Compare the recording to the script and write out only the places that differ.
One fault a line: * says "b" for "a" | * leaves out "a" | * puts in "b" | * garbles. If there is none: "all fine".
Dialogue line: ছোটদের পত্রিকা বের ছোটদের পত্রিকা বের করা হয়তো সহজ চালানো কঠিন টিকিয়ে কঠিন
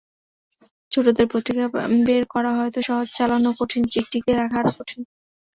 * leaves out "ছোটদের পত্রিকা বের"
* puts in "রাখা আরও"